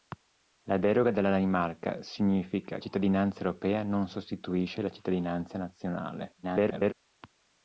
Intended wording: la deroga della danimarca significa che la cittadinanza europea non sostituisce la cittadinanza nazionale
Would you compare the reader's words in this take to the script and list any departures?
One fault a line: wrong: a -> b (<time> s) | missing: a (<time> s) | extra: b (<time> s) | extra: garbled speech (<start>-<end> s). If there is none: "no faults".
missing: che la (2.8 s)
extra: garbled speech (6.4-6.9 s)